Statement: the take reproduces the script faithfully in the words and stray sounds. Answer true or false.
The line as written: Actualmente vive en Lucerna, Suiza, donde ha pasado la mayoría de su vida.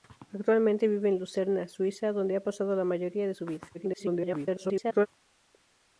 false